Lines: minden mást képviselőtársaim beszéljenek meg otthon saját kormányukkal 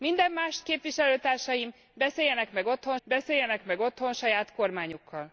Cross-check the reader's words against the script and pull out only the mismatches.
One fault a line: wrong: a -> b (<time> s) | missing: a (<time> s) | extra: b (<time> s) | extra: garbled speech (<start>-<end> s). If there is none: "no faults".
extra: beszéljenek meg otthon (3.0 s)